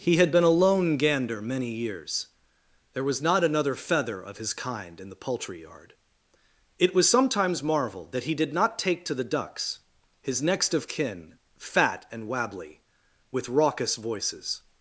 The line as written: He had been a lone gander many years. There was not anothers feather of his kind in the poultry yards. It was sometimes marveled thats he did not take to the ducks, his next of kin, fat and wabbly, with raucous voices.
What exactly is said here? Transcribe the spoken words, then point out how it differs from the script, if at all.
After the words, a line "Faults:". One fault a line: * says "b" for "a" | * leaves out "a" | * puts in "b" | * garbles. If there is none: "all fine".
He had been a lone gander many years. There was not another feather of his kind in the poultry yard. It was sometimes marveled that he did not take to the ducks, his next of kin, fat and wabbly, with raucous voices.
Faults:
* says "another" for "anothers"
* says "yard" for "yards"
* says "that" for "thats"